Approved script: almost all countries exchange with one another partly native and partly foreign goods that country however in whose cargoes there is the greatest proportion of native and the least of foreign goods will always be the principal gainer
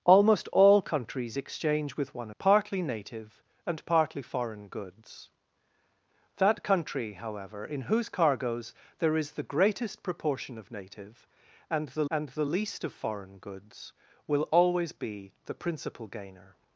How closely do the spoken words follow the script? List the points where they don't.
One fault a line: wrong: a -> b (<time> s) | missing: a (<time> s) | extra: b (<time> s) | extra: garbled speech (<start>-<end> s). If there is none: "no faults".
missing: another (2.3 s)
extra: and the (12.1 s)